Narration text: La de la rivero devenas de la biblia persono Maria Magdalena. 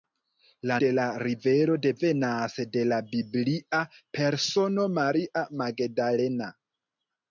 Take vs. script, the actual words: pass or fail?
pass